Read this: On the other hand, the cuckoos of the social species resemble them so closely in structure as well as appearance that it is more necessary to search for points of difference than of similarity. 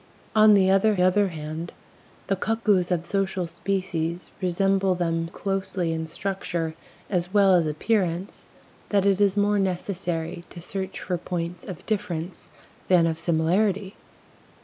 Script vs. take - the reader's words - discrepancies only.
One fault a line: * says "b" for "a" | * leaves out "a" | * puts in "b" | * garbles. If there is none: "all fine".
* puts in "other"
* leaves out "the"
* leaves out "so"